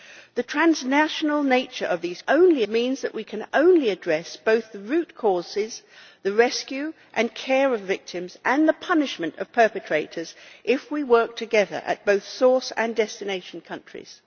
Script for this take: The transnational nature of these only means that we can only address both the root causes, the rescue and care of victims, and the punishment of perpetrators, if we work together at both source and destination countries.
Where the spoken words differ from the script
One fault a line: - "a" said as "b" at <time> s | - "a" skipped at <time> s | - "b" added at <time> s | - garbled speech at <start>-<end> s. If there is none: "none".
none